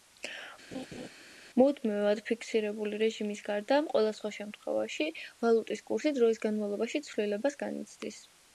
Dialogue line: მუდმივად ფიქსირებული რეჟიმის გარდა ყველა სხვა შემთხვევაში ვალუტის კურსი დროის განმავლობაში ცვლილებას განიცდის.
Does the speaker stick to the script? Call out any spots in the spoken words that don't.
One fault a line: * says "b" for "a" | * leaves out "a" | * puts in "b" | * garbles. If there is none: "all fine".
all fine